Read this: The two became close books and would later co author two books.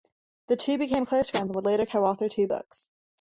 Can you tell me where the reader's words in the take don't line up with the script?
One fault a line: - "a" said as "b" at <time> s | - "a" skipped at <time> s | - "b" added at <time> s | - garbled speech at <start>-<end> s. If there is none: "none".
- "books" said as "friends" at 1.3 s